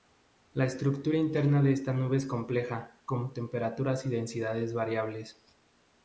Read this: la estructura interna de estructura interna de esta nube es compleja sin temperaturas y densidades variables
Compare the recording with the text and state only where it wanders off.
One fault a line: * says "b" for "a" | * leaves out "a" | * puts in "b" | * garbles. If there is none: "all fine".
* leaves out "estructura interna de"
* says "con" for "sin"